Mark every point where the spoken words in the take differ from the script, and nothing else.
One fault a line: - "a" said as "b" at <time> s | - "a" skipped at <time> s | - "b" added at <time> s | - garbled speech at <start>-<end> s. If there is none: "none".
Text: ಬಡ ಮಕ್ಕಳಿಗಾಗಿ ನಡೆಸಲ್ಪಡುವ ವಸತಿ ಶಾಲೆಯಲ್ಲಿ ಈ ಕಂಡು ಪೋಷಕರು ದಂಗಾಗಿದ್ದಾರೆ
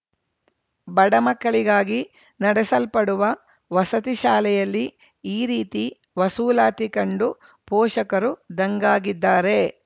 - "ರೀತಿ ವಸೂಲಾತಿ" added at 5.5 s